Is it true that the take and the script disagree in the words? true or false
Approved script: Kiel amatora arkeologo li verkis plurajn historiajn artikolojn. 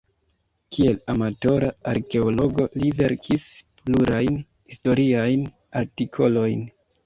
false